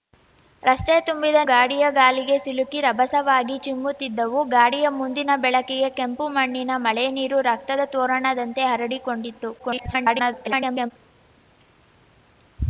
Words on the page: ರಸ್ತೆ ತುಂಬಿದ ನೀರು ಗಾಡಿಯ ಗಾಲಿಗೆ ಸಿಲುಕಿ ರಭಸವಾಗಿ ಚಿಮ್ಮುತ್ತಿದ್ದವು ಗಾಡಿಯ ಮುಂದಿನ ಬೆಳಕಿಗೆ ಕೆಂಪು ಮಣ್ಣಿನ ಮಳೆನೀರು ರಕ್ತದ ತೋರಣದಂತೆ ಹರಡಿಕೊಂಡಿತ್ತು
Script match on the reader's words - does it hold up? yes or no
no